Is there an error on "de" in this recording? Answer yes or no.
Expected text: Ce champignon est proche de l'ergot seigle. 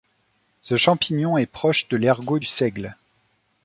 no